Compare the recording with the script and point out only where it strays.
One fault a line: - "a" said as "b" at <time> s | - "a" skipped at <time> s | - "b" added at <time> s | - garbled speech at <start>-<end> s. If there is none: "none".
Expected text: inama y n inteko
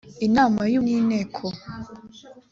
none